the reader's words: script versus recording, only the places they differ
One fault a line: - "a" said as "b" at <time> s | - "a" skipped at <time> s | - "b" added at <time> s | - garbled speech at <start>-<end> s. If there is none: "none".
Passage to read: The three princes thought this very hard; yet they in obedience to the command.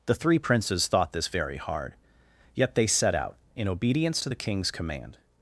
- "set out" added at 2.9 s
- "king's" added at 4.4 s